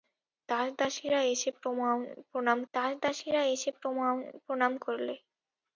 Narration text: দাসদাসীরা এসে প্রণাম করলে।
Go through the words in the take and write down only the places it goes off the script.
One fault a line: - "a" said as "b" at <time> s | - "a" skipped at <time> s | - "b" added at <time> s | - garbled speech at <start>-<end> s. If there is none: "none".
- "দাসদাসীরা এসে প্রণাম" added at 2.7 s